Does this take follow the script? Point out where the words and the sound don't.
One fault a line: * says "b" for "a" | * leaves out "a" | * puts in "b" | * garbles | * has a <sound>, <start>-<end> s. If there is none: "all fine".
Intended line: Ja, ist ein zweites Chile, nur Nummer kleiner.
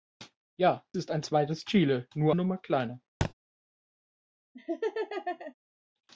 * has a thud, 3.2-3.3 s
* has a laugh, 4.5-5.5 s